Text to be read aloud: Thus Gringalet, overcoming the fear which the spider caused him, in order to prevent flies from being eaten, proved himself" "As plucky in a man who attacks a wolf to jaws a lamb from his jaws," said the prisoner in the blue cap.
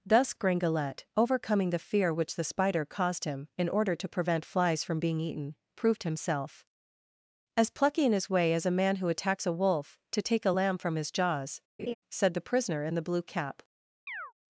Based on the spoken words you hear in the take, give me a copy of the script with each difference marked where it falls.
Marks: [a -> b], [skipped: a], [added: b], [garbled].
Thus Gringalet, overcoming the fear which the spider caused him, in order to prevent flies from being eaten, proved himself" "As plucky in [added: his way as] a man who attacks a wolf to [jaws -> take] a lamb from his jaws," said the prisoner in the blue cap.